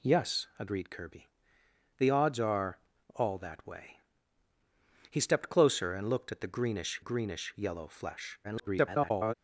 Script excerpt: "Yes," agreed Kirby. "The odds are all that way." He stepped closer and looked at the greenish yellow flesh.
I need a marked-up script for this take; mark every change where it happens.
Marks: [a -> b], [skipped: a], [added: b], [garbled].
"Yes," agreed Kirby. "The odds are all that way." He stepped closer and looked at the greenish [added: greenish] yellow flesh. [garbled]